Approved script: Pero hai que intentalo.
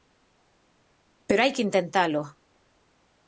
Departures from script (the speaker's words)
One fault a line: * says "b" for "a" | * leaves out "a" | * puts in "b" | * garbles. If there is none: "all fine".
all fine